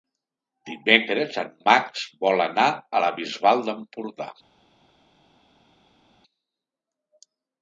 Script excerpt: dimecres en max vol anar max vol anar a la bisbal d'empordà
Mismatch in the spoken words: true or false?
true